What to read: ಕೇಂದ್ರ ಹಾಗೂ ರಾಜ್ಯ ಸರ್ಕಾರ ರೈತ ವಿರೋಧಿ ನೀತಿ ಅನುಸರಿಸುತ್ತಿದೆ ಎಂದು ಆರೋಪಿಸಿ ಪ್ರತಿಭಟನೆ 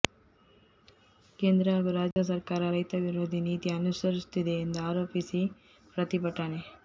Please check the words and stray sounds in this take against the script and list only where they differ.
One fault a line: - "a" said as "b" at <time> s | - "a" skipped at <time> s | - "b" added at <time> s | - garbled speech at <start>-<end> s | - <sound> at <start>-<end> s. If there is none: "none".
- dropout at 2.1-2.2 s